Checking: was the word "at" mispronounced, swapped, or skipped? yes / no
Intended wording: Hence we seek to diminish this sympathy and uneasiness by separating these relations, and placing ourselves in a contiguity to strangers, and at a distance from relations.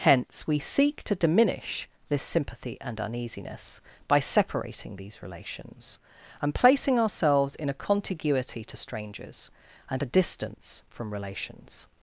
yes